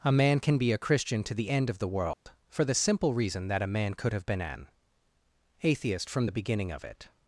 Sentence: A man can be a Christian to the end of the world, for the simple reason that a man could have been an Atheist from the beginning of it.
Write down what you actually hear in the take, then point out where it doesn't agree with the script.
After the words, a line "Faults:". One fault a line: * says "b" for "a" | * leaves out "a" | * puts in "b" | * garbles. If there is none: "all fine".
A man can be a Christian to the end of the world, for the simple reason that a man could have been an Atheist from the beginning of it.
Faults:
all fine